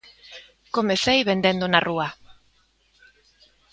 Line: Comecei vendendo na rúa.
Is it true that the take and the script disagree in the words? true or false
false